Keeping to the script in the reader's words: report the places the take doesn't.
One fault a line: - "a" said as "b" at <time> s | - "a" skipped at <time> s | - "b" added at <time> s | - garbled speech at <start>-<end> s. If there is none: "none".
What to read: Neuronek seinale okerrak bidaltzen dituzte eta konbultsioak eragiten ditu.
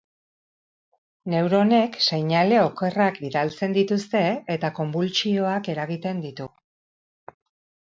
none